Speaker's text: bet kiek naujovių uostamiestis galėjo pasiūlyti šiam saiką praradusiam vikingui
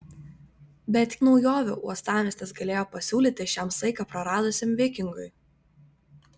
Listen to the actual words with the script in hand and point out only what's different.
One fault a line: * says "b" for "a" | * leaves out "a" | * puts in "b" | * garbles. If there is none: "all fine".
* leaves out "kiek"